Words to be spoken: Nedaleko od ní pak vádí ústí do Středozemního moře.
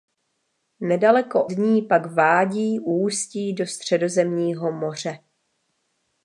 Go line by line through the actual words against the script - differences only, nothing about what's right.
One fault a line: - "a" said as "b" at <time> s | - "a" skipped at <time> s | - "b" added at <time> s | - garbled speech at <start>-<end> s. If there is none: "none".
- "od" skipped at 1.5 s